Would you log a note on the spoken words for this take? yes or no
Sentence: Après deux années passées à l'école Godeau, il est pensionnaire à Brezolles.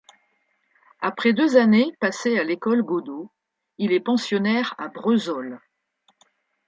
no